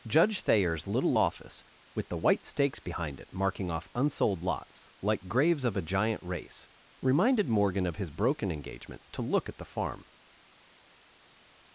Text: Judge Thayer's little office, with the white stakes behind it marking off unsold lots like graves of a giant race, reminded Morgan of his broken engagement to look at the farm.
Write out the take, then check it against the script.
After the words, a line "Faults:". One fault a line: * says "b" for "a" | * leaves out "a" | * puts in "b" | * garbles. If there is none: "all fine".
Judge Thayer's little office, with the white stakes behind it marking off unsold lots like graves of a giant race, reminded Morgan of his broken engagement to look at the farm.
Faults:
all fine